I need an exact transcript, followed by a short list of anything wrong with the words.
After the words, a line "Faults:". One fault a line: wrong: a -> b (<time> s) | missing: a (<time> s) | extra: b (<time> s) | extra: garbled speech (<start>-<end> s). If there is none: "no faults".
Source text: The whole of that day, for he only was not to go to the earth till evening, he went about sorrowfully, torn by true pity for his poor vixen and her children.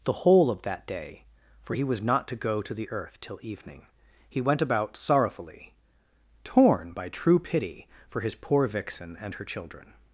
The whole of that day, for he was not to go to the earth till evening, he went about sorrowfully, torn by true pity for his poor vixen and her children.
Faults:
missing: only (1.8 s)